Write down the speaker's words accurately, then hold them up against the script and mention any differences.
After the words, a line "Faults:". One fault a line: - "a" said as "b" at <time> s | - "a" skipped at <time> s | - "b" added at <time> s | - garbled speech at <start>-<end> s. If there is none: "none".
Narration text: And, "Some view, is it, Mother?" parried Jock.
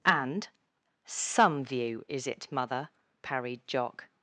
And, "Some view, is it, Mother?" parried Jock.
Faults:
none